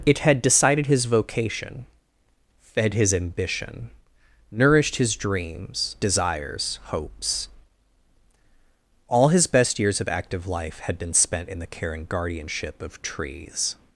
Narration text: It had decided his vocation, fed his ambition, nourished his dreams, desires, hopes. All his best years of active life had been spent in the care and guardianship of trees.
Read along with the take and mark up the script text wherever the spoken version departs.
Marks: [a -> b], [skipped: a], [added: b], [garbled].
It had decided his vocation, fed his ambition, nourished his dreams, desires, hopes. All his best years of active life had been spent in the care and guardianship of trees.